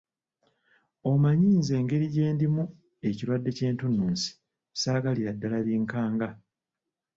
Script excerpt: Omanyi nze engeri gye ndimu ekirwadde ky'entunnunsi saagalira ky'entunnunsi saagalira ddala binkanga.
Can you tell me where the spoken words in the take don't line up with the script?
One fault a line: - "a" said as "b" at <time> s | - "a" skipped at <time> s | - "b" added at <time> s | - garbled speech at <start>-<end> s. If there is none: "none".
- "ky'entunnunsi saagalira" skipped at 5.3 s